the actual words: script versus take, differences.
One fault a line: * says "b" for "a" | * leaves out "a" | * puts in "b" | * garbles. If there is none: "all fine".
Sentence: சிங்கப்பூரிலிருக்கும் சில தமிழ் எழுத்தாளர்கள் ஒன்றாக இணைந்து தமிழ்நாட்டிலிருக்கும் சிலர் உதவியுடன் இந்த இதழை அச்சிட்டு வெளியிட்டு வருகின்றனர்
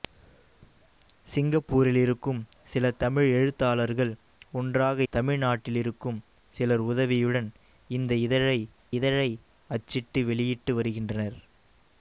* leaves out "இணைந்து"
* puts in "இதழை"